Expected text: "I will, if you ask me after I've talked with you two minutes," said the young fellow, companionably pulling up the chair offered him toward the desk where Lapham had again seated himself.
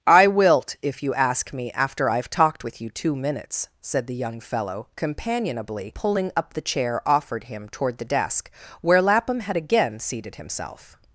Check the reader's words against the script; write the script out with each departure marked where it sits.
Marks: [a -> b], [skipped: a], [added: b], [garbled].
"I [will, -> wilt] if you ask me after I've talked with you two minutes," said the young fellow, companionably pulling up the chair offered him toward the desk where Lapham had again seated himself.